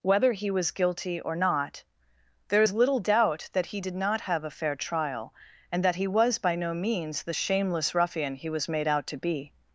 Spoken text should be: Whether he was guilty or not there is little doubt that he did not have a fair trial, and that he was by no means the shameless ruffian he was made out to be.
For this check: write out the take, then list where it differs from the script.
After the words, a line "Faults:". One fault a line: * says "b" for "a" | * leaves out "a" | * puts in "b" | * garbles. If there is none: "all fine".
Whether he was guilty or not there is little doubt that he did not have a fair trial, and that he was by no means the shameless ruffian he was made out to be.
Faults:
all fine